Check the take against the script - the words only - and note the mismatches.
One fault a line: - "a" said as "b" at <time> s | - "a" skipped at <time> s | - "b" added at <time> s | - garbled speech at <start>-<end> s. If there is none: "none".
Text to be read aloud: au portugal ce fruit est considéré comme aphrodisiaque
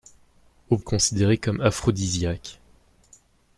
- "portugal ce fruit" skipped at 0.8 s